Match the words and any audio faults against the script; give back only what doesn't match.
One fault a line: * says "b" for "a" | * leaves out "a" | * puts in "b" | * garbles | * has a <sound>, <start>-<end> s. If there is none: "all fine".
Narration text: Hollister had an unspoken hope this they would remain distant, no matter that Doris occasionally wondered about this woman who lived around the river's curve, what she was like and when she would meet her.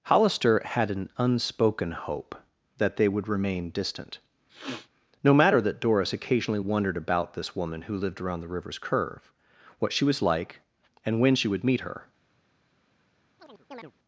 * says "that" for "this"
* has a sniff, 4.5-4.9 s
* has a chirp, 13.4-13.9 s